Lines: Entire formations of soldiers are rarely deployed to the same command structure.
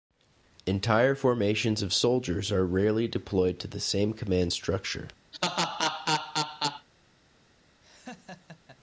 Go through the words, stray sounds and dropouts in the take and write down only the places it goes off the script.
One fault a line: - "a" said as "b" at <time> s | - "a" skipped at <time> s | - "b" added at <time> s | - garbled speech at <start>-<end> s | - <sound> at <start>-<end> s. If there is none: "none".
- laugh at 5.3-6.9 s
- laugh at 7.8-8.8 s